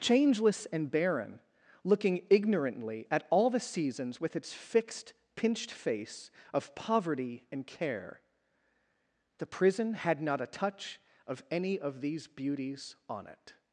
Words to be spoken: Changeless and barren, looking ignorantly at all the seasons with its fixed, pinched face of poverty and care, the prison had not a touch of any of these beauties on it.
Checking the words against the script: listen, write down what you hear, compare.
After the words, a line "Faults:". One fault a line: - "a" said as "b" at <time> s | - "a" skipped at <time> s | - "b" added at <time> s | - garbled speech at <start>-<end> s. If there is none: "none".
Changeless and barren, looking ignorantly at all the seasons with its fixed, pinched face of poverty and care, the prison had not a touch of any of these beauties on it.
Faults:
none